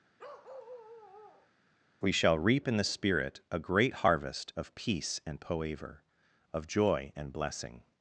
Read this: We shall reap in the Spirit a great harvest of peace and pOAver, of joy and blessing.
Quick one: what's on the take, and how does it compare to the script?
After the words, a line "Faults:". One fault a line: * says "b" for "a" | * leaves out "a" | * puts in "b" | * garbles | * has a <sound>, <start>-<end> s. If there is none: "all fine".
We shall reap in the Spirit a great harvest of peace and pOAver, of joy and blessing.
Faults:
* has a bark, 0.2-1.5 s